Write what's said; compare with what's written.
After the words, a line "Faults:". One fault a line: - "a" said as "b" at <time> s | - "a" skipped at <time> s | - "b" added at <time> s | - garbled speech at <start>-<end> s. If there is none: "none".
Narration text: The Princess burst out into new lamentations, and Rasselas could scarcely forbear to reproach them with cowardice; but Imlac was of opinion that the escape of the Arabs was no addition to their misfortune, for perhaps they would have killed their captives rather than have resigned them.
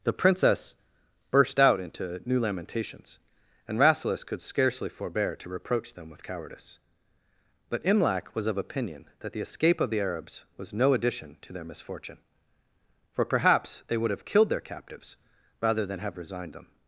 The Princess burst out into new lamentations, and Rasselas could scarcely forbear to reproach them with cowardice; but Imlac was of opinion that the escape of the Arabs was no addition to their misfortune, for perhaps they would have killed their captives rather than have resigned them.
Faults:
none